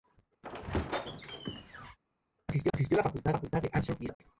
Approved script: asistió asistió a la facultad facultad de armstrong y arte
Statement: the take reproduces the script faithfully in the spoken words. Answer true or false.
true